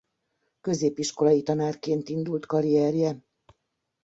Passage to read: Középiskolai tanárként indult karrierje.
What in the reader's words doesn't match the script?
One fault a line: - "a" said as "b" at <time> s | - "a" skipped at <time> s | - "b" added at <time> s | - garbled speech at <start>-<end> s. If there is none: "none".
none